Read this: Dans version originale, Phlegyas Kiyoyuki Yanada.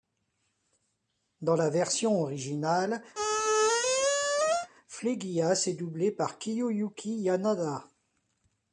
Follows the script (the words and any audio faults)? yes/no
no